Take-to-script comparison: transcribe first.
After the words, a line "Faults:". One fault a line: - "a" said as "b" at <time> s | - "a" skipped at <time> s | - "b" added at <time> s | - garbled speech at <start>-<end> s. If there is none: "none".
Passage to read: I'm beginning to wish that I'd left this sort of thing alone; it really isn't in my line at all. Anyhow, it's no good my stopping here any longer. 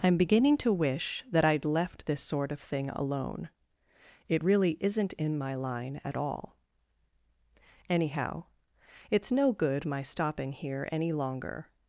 I'm beginning to wish that I'd left this sort of thing alone; it really isn't in my line at all. Anyhow, it's no good my stopping here any longer.
Faults:
none